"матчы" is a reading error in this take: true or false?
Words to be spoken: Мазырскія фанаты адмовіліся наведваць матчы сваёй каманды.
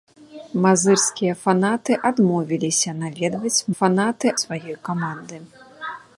true